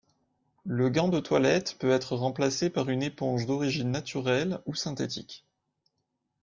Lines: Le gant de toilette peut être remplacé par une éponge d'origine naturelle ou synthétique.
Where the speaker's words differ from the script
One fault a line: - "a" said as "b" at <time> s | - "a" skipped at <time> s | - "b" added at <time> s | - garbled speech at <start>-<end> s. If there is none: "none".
none